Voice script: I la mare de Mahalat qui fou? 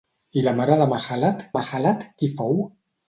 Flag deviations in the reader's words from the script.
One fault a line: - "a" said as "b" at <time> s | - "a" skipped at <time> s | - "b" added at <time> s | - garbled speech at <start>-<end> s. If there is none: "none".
- "Mahalat" added at 1.5 s